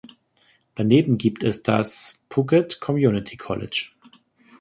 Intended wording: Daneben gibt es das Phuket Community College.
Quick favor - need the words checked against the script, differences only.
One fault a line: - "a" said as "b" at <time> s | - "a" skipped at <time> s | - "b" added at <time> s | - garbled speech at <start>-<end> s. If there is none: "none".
none